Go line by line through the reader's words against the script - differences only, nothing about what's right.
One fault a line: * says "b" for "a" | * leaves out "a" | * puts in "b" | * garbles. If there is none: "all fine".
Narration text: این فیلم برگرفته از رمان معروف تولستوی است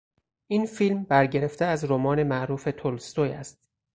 all fine